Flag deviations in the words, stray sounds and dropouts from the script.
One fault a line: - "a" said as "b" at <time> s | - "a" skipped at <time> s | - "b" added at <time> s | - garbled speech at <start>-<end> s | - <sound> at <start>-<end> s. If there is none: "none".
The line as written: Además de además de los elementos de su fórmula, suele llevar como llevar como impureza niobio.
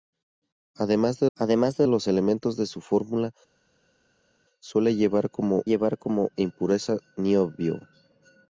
none